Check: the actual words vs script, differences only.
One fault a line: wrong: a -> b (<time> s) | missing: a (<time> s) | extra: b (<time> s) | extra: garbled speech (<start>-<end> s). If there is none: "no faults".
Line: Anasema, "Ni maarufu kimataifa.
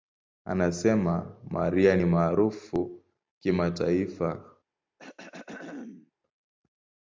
extra: Mariah (1.5 s)